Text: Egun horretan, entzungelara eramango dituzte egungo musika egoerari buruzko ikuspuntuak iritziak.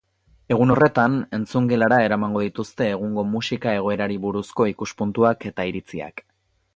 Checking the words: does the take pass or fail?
fail